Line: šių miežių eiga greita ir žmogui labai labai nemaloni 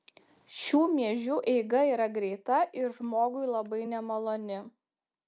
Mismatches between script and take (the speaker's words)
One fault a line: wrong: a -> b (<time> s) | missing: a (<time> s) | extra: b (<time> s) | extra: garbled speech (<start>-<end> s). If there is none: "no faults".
extra: yra (1.9 s)
missing: labai (3.8 s)